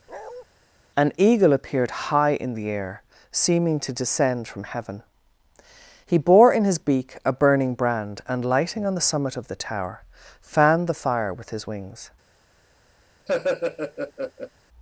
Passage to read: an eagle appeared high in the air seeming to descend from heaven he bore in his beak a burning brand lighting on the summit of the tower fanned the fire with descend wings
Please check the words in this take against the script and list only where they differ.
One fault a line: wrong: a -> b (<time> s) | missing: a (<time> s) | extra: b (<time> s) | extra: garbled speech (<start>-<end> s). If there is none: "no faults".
extra: and (8.3 s)
wrong: descend -> his (11.5 s)